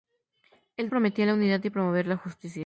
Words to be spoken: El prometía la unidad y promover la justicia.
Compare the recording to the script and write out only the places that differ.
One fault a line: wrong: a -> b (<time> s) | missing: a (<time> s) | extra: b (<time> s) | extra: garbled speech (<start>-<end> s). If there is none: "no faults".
no faults